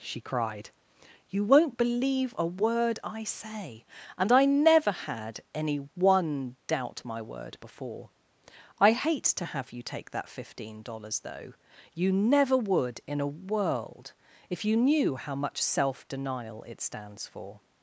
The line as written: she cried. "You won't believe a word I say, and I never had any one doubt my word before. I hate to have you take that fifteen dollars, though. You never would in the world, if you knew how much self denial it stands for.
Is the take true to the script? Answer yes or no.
no